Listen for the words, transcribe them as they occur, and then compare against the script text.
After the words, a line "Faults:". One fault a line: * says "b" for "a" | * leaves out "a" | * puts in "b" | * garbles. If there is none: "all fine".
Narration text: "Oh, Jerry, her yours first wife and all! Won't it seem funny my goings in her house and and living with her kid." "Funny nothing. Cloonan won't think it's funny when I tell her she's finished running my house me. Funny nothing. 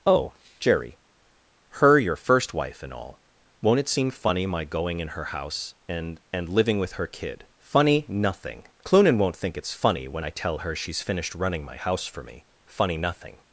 "Oh, Jerry, her your first wife and all! Won't it seem funny my going in her house and and living with her kid." "Funny nothing. Cloonan won't think it's funny when I tell her she's finished running my house for me. Funny nothing.
Faults:
* says "your" for "yours"
* says "going" for "goings"
* puts in "for"